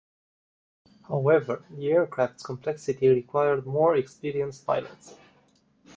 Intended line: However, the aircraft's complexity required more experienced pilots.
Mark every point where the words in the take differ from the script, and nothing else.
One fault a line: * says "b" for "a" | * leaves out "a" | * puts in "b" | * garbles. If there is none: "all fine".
all fine